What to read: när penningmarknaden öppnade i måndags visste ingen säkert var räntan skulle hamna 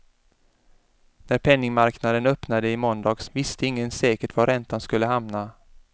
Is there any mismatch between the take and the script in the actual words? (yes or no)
no